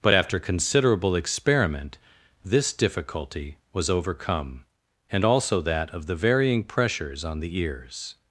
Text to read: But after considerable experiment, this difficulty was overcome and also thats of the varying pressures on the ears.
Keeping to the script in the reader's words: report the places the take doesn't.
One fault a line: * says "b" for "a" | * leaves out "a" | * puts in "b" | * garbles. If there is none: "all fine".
* says "that" for "thats"